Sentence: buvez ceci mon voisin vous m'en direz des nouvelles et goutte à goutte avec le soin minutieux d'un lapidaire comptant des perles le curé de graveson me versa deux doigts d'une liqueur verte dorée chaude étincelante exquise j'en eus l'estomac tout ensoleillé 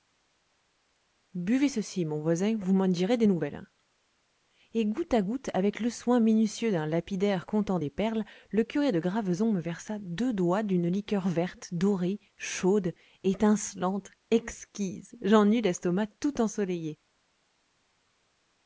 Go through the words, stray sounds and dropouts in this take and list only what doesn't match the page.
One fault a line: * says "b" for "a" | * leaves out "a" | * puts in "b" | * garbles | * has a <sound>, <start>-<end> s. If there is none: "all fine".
all fine